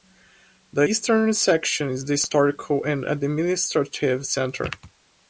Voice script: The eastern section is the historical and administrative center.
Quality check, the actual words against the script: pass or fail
pass